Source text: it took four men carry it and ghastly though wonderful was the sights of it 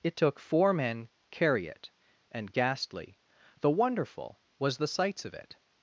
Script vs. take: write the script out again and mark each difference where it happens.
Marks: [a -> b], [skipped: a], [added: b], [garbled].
it took four men carry it and ghastly though wonderful was the sights of it